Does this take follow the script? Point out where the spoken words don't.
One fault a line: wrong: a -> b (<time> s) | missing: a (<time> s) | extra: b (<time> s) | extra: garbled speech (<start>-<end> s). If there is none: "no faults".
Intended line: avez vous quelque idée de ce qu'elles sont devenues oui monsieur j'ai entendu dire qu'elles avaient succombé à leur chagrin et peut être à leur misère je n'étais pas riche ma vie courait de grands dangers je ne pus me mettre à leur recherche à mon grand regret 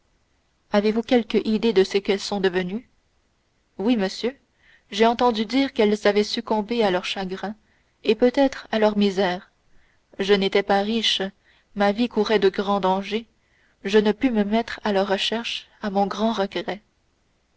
no faults